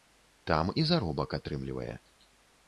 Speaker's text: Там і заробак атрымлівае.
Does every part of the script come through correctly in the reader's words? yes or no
yes